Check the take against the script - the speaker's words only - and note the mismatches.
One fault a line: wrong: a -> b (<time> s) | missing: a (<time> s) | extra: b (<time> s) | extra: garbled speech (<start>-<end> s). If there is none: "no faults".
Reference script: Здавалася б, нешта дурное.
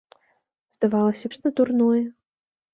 missing: б (1.2 s)